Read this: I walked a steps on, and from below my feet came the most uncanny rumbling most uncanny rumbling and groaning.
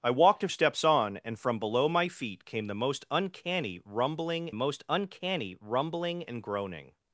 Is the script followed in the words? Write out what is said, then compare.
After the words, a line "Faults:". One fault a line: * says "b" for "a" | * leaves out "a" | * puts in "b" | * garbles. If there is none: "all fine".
I walked a steps on, and from below my feet came the most uncanny rumbling most uncanny rumbling and groaning.
Faults:
all fine